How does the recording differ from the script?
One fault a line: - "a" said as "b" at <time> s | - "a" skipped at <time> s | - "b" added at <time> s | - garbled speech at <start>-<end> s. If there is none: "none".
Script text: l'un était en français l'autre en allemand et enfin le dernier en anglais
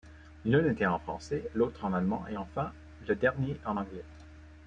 none